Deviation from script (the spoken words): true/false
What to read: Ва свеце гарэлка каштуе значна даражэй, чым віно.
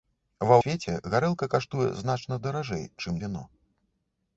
false